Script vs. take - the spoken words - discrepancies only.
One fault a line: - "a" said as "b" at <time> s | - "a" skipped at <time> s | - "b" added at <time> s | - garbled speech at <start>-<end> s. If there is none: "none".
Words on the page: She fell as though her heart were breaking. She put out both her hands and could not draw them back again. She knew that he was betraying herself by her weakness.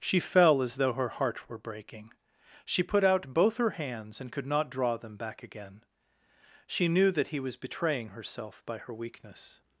none